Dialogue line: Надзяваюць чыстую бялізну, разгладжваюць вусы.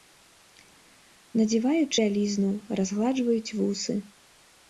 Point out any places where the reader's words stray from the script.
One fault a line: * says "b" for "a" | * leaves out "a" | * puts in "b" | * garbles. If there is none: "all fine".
* leaves out "чыстую"